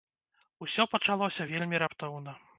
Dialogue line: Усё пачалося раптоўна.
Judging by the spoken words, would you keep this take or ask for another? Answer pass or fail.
fail